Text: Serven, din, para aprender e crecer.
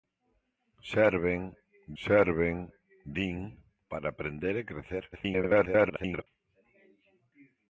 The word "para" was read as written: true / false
true